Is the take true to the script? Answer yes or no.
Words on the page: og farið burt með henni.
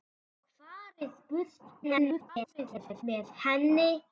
no